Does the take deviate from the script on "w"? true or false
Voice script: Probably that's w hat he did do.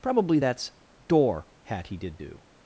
true